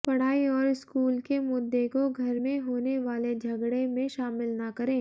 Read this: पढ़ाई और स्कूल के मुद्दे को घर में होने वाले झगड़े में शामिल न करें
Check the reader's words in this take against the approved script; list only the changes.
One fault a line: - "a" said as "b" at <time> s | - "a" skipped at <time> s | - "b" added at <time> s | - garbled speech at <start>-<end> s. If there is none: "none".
none